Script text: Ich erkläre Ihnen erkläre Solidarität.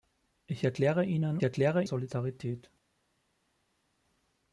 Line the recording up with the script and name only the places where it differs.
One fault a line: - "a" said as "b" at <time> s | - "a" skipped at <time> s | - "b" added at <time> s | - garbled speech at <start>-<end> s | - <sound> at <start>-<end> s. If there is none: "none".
none